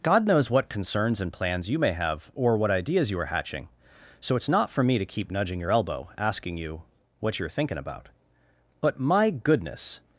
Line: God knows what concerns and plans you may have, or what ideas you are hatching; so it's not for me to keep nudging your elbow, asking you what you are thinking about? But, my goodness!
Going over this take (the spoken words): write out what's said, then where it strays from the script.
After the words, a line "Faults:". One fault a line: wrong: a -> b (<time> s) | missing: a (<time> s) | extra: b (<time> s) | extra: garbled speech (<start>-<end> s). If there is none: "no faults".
God knows what concerns and plans you may have, or what ideas you are hatching; so it's not for me to keep nudging your elbow, asking you what you are thinking about? But, my goodness!
Faults:
no faults